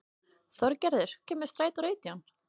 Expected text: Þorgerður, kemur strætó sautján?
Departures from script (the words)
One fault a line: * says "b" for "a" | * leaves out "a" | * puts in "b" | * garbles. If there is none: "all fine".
all fine